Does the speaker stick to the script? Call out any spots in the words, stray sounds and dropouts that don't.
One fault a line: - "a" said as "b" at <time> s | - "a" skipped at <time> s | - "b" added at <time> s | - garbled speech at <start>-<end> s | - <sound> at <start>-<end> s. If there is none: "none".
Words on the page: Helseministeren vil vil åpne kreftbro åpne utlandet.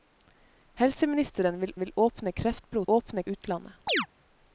- chirp at 3.9-4.1 s